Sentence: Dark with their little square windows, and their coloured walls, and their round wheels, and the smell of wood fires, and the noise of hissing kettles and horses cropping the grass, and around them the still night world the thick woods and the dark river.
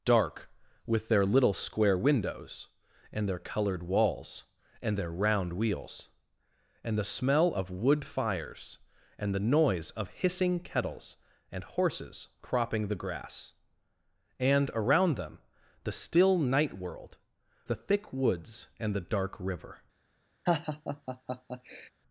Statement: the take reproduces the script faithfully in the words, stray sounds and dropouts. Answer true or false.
false